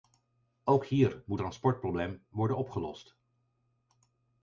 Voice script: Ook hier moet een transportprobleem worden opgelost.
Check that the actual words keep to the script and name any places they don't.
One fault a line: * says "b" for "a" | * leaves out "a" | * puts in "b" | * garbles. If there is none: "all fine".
* leaves out "een"